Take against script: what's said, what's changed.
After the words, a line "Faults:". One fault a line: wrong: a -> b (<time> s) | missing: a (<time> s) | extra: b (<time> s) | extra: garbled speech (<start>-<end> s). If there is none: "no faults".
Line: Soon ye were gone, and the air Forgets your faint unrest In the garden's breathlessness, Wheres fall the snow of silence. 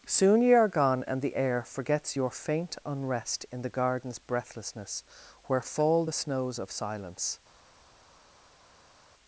Soon ye are gone, and the air Forgets your faint unrest In the garden's breathlessness, Where fall the snows of silence.
Faults:
wrong: were -> are (0.5 s)
wrong: Wheres -> Where (5.5 s)
wrong: snow -> snows (6.1 s)